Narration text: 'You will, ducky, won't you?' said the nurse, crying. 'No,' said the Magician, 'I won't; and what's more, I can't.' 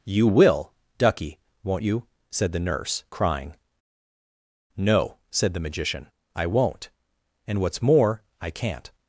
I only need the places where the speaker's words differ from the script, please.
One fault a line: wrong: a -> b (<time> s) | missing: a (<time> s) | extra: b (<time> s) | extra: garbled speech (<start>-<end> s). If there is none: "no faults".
no faults